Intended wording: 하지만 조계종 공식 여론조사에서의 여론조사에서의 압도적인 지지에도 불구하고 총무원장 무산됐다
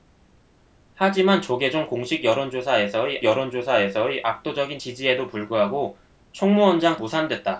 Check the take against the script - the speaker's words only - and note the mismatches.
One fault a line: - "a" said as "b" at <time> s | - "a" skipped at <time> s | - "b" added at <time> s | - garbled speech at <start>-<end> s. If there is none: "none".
none